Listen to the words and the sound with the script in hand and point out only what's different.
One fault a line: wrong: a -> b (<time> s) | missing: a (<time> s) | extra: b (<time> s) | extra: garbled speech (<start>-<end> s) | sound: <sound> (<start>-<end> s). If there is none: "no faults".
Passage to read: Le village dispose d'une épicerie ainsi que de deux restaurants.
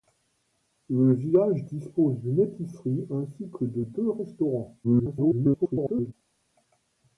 extra: garbled speech (4.8-6.1 s)